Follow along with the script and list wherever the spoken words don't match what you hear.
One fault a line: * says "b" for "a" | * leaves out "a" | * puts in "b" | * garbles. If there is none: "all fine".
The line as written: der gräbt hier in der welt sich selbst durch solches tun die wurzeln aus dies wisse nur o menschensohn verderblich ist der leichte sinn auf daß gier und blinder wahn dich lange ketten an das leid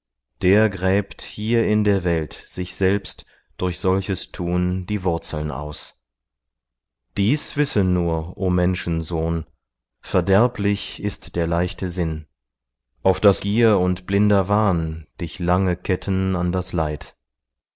all fine